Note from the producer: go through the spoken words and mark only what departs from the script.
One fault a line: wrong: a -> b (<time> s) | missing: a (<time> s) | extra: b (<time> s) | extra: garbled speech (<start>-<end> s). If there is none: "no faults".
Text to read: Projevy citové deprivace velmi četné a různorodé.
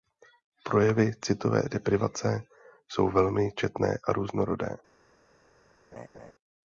extra: jsou (2.9 s)